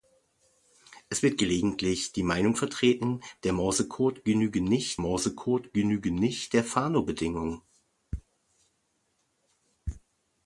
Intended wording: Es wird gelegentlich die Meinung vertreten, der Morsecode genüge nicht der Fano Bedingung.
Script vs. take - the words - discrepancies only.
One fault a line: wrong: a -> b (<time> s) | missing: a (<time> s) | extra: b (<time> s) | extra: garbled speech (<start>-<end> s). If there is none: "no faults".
extra: Morsecode genüge nicht (5.0 s)